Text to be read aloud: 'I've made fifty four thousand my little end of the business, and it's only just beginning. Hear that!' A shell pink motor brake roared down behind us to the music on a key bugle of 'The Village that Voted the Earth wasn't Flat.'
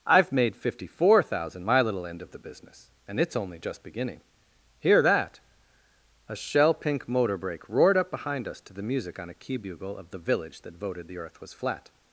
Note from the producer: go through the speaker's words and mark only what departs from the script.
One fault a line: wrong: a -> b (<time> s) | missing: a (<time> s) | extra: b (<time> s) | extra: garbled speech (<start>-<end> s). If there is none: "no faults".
wrong: down -> up (8.0 s)
wrong: wasn't -> was (11.4 s)